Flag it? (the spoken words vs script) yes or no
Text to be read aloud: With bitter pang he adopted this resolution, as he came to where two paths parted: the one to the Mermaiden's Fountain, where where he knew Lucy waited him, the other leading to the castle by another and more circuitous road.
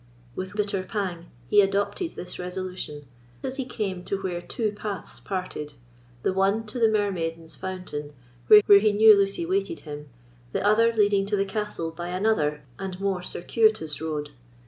no